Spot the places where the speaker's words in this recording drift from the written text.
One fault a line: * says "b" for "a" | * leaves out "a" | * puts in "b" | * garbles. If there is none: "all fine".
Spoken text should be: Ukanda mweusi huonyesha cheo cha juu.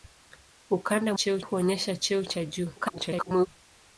* says "cheo" for "mweusi"
* garbles